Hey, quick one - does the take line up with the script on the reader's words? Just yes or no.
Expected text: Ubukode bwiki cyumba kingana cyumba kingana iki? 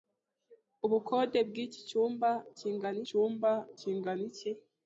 yes